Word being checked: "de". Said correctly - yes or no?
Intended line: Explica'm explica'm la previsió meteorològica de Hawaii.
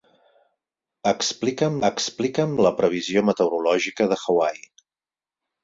yes